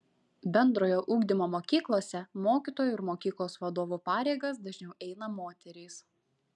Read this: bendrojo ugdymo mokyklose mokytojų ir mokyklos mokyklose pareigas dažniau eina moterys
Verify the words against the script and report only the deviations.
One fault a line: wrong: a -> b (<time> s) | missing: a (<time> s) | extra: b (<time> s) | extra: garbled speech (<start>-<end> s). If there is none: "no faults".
wrong: mokyklose -> vadovų (3.6 s)